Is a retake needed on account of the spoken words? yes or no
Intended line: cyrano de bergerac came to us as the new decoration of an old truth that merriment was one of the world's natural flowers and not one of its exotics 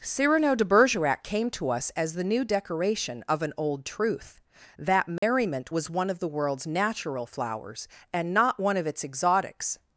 no